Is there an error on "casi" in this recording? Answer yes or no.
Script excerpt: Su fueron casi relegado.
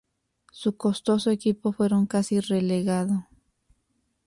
no